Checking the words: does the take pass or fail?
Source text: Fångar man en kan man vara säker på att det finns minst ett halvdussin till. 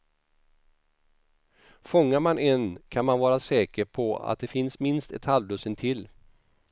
pass